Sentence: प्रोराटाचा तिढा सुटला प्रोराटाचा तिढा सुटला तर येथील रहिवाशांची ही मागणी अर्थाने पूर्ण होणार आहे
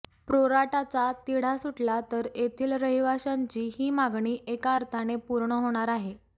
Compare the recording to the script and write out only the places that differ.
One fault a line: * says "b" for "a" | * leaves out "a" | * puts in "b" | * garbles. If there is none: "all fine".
* leaves out "प्रोराटाचा तिढा सुटला"
* puts in "एका"